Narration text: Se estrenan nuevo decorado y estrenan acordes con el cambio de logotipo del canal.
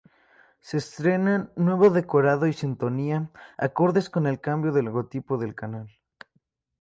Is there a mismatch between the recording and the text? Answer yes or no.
yes